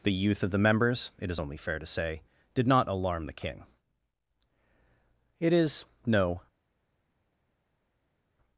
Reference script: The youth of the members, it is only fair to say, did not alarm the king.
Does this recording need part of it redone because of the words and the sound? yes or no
yes